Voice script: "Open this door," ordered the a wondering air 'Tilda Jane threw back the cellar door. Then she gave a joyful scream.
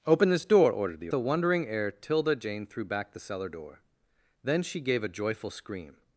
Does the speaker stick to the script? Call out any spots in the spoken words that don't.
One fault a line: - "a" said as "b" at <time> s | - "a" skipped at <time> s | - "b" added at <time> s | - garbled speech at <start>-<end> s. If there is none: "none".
none